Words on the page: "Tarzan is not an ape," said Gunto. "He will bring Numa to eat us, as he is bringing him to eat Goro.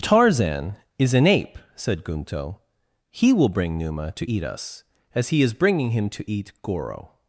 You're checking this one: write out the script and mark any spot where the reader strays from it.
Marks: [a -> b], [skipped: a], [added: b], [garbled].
"Tarzan is [skipped: not] an ape," said Gunto. "He will bring Numa to eat us, as he is bringing him to eat Goro.